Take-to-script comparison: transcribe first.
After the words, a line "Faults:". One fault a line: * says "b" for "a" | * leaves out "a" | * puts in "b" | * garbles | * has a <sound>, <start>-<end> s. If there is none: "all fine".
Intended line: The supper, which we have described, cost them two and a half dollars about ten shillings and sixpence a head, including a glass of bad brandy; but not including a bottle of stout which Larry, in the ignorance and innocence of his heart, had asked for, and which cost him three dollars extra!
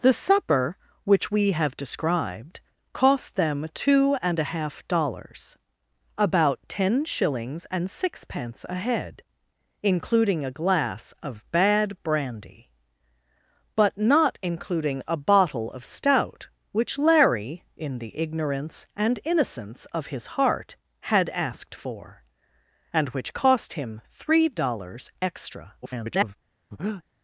The supper, which we have described, cost them two and a half dollars about ten shillings and sixpence a head, including a glass of bad brandy; but not including a bottle of stout which Larry, in the ignorance and innocence of his heart, had asked for, and which cost him three dollars extra! [garbled]
Faults:
* garbles
* has a breath, 26.7-27.0 s